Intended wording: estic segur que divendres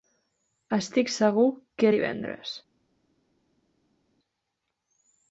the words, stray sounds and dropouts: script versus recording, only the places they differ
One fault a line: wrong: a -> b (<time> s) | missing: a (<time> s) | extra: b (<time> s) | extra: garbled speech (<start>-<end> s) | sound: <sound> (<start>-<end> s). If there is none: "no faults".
no faults